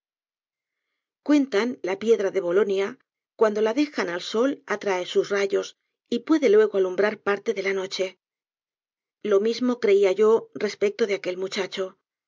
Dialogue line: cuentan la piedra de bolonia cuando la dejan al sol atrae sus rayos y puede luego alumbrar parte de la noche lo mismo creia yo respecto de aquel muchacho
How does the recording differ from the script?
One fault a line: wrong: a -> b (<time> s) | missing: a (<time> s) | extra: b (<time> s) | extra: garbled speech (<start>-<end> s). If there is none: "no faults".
no faults